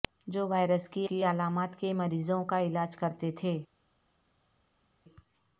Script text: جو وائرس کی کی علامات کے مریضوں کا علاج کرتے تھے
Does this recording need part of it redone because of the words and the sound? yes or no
no